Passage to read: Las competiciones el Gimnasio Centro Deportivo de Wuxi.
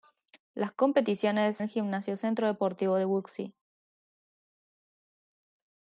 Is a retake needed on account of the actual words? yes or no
no